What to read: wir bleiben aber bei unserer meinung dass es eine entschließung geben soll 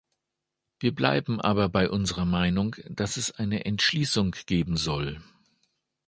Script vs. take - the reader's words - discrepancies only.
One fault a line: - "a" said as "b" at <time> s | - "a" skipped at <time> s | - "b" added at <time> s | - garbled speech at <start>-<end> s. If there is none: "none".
none